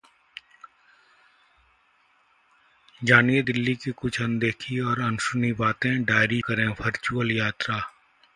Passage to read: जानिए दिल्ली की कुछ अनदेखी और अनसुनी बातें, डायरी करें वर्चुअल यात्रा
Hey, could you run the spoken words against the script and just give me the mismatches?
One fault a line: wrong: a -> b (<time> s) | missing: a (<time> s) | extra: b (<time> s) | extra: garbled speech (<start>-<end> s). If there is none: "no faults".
no faults